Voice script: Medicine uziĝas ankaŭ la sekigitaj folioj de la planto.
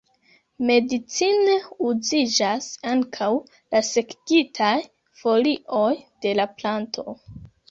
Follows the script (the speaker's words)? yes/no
yes